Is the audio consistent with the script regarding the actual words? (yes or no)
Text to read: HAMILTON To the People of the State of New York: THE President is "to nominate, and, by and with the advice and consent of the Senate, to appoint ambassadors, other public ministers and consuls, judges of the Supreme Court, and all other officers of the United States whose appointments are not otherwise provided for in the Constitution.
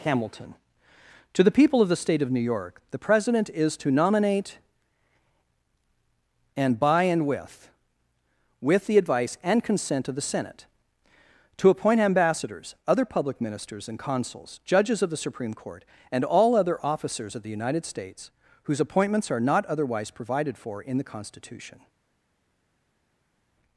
no